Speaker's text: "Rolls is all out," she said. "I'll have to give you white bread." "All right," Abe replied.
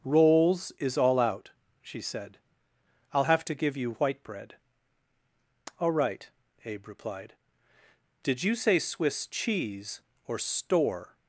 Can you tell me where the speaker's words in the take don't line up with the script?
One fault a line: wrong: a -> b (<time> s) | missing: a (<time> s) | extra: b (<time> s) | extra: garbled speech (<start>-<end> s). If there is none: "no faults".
extra: Did you say Swiss cheese or store (8.2 s)